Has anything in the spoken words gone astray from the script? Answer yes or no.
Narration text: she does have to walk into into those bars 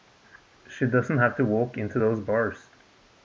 yes